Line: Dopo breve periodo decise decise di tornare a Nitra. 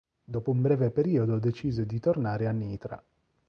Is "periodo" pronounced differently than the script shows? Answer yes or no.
no